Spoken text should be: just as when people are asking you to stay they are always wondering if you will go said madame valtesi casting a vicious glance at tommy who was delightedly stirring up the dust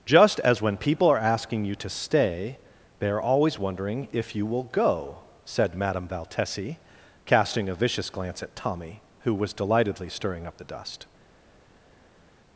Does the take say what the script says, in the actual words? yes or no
yes